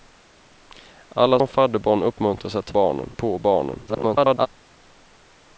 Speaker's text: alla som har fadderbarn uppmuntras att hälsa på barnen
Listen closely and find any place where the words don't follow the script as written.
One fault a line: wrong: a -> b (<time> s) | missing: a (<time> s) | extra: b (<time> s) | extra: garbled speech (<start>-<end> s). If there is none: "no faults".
missing: som (1.4 s)
wrong: hälsa -> barnen (2.7 s)
extra: garbled speech (3.9-4.5 s)